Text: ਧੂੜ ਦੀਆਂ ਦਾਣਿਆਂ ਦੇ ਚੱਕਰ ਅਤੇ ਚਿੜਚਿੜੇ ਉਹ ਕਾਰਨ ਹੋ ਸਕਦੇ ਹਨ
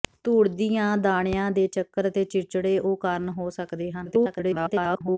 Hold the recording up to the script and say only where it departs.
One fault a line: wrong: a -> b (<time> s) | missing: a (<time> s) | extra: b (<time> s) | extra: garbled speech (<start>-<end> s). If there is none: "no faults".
extra: garbled speech (4.1-5.2 s)